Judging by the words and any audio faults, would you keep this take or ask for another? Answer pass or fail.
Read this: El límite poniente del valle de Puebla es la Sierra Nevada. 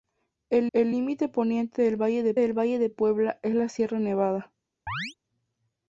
fail